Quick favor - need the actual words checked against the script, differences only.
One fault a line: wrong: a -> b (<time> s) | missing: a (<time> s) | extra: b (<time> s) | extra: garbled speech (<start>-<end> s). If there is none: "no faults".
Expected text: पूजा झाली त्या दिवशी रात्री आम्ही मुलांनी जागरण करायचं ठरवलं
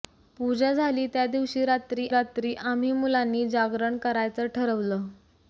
extra: रात्री (2.1 s)